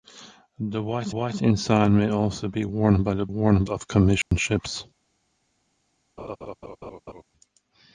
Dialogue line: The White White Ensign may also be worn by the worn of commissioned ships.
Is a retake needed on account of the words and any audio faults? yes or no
yes